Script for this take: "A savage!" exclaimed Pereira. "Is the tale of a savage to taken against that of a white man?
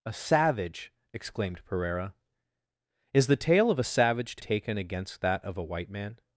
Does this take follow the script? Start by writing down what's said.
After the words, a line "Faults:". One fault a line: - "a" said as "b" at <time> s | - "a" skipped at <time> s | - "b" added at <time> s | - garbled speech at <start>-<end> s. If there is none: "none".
"A savage!" exclaimed Pereira. "Is the tale of a savage to taken against that of a white man?
Faults:
none